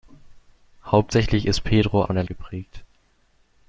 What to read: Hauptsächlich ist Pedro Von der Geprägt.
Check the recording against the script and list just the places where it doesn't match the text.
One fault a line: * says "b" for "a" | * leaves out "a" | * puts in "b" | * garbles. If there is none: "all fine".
all fine